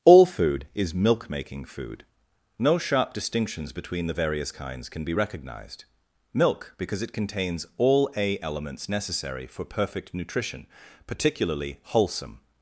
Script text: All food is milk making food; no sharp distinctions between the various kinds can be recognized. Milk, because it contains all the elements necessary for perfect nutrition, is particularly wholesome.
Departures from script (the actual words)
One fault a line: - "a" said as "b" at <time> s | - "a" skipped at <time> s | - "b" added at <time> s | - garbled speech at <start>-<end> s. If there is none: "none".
- "the" said as "a" at 8.1 s
- "is" skipped at 10.7 s